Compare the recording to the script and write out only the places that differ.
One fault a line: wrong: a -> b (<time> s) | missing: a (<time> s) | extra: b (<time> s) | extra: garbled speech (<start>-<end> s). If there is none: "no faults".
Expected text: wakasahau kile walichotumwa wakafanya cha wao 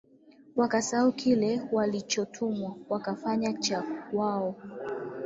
no faults